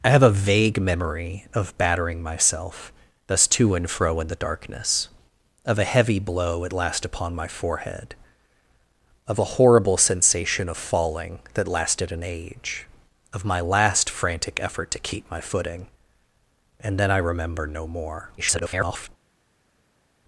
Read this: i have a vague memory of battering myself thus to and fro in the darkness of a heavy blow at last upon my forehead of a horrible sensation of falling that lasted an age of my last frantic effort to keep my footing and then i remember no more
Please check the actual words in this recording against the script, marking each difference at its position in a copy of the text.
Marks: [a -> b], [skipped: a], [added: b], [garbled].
i have a vague memory of battering myself thus to and fro in the darkness of a heavy blow at last upon my forehead of a horrible sensation of falling that lasted an age of my last frantic effort to keep my footing and then i remember no more [garbled]